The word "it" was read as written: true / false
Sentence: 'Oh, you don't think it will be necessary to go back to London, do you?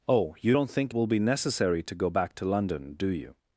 false